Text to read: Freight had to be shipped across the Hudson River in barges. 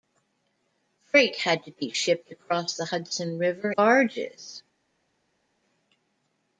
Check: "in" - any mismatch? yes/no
yes